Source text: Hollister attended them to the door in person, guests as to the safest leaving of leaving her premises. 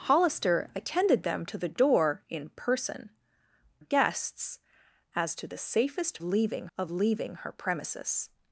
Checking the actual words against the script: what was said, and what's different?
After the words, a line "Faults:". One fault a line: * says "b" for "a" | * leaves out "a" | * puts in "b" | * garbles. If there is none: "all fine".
Hollister attended them to the door in person, guests as to the safest leaving of leaving her premises.
Faults:
all fine